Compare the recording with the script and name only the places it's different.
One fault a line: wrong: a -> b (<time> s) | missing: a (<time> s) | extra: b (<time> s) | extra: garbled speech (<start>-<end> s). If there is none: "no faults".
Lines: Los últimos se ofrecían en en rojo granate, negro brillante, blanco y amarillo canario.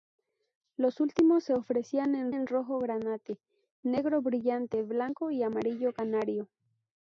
no faults